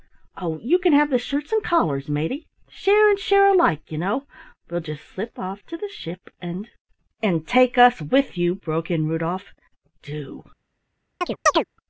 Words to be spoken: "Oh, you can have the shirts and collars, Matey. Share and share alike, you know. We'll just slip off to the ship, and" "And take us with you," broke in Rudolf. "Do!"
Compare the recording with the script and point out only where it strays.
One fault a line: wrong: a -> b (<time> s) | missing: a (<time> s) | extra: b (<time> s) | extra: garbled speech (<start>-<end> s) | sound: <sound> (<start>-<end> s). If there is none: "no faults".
sound: chirp (11.2-11.6 s)